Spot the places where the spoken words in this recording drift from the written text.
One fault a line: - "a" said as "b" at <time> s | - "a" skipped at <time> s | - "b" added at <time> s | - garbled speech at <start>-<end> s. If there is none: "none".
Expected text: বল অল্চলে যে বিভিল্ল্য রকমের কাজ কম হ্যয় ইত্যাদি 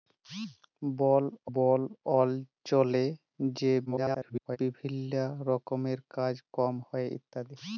- "বল" added at 1.5 s
- garbled speech at 3.9-4.6 s